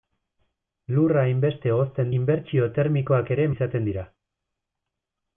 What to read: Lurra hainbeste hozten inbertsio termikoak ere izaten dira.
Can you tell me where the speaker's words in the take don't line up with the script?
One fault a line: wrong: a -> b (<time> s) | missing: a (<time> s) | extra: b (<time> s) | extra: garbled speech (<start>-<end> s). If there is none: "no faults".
no faults